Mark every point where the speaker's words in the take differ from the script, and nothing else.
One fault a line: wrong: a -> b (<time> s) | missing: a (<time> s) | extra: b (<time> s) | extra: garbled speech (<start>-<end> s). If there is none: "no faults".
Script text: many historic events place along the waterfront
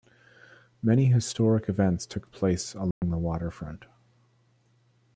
extra: took (2.1 s)